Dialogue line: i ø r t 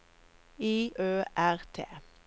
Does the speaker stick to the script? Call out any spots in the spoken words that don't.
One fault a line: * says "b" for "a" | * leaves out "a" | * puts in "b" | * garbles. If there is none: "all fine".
all fine